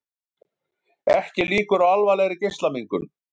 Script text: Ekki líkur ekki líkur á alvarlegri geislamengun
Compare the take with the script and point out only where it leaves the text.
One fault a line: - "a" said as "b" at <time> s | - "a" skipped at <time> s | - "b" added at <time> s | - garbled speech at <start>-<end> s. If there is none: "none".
- "ekki líkur" skipped at 1.9 s